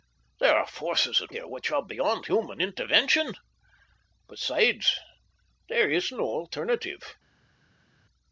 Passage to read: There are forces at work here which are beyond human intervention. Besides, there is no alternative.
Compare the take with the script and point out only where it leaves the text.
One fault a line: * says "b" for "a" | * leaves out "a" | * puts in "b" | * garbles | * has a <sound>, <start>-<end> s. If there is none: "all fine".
* leaves out "work"